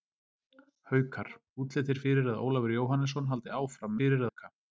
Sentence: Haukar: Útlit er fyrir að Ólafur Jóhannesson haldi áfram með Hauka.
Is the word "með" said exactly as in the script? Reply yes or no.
no